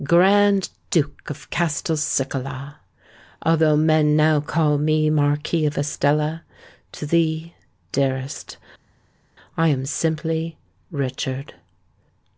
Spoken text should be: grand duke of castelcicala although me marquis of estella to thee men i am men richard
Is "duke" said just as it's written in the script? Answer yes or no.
yes